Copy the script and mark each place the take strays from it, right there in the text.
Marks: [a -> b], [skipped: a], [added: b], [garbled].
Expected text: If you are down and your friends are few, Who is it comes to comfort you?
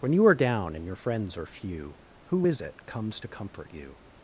[If -> When] you are down and your friends are few, Who is it comes to comfort you?